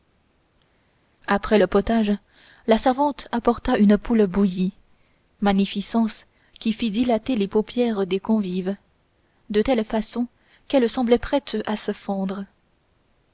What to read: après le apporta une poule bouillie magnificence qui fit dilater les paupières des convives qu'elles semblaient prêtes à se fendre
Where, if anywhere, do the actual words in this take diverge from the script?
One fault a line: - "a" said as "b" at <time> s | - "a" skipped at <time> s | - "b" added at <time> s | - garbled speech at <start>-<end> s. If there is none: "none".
- "potage la servante" added at 1.7 s
- "de telle façon" added at 9.5 s